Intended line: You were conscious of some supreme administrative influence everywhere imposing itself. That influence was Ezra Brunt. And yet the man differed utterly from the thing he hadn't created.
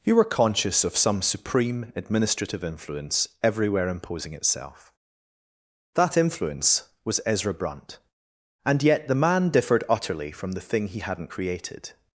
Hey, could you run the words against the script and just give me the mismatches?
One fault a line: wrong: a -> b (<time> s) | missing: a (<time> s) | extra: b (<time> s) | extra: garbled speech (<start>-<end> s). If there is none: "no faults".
no faults